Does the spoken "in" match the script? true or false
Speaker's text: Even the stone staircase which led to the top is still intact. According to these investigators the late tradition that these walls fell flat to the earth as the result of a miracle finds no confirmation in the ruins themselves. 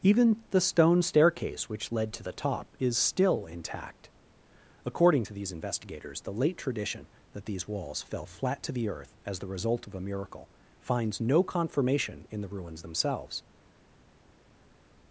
true